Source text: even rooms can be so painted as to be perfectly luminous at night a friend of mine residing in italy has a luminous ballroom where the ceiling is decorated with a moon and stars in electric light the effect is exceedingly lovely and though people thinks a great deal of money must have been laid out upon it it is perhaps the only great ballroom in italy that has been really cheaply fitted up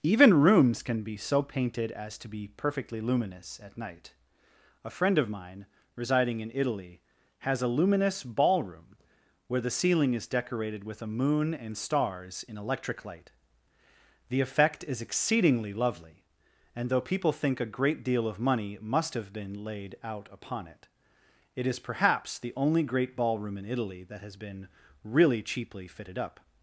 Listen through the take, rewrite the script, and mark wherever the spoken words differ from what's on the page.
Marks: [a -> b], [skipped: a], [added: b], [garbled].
even rooms can be so painted as to be perfectly luminous at night a friend of mine residing in italy has a luminous ballroom where the ceiling is decorated with a moon and stars in electric light the effect is exceedingly lovely and though people [thinks -> think] a great deal of money must have been laid out upon it it is perhaps the only great ballroom in italy that has been really cheaply fitted up